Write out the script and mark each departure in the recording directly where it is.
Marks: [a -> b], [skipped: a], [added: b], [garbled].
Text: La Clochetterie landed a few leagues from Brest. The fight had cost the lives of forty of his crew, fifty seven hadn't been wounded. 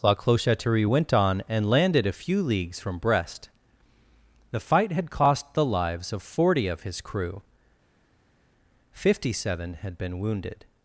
La Clochetterie [added: went on and] landed a few leagues from Brest. The fight had cost the lives of forty of his crew, fifty seven [hadn't -> had] been wounded.